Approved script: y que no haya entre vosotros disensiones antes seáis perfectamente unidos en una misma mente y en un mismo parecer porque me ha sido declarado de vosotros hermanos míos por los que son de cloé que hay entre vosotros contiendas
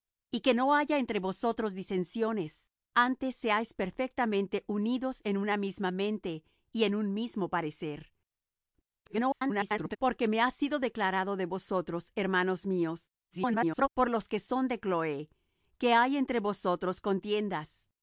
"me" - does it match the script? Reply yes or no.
yes